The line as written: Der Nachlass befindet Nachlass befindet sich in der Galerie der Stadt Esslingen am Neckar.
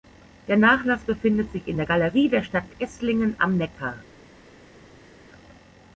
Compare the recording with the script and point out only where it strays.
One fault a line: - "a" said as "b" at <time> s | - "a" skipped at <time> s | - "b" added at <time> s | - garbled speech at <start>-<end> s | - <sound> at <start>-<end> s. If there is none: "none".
- "Nachlass befindet" skipped at 1.5 s